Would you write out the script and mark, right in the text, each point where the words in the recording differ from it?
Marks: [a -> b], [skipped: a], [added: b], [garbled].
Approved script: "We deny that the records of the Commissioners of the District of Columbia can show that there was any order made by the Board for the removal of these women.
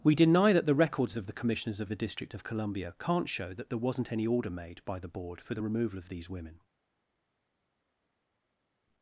"We deny that the records of the Commissioners of the District of Columbia [can -> can't] show that there [was -> wasn't] any order made by the Board for the removal of these women.